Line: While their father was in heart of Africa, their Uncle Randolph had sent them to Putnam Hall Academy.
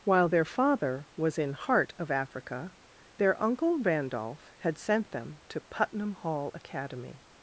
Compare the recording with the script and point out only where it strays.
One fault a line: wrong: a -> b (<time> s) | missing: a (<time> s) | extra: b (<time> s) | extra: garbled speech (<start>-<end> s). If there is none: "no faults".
no faults